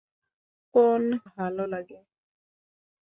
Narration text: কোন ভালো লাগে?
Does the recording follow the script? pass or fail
pass